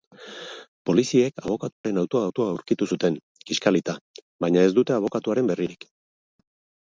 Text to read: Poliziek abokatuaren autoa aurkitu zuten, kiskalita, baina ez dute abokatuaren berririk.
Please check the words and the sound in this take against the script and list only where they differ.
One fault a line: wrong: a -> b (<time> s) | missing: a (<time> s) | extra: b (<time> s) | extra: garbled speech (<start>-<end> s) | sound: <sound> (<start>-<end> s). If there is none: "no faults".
sound: dropout (1.7-1.8 s)
extra: autoa (2.3 s)